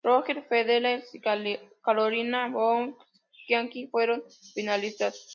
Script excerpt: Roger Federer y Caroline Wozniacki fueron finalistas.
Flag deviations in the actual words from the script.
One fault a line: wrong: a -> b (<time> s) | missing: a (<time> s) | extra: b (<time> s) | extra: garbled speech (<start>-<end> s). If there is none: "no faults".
no faults